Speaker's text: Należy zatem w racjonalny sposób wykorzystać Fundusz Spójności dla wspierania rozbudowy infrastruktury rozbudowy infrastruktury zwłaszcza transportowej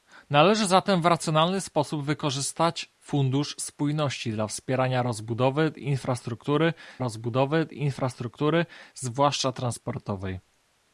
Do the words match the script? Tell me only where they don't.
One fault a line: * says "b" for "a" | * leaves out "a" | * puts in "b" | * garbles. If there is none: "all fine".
all fine